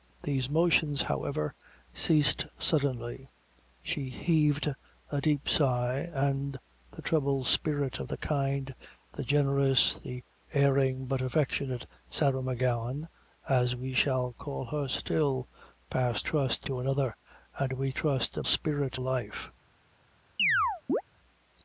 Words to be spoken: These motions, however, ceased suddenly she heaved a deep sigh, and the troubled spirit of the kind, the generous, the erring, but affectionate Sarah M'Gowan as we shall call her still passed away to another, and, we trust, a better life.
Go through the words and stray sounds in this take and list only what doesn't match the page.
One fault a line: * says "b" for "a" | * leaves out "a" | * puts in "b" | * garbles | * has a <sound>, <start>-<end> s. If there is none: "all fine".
* says "trust" for "away"
* says "spirit" for "better"
* has a chirp, 20.4-21.0 s